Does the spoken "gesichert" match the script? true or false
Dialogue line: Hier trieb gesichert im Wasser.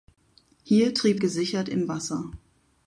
true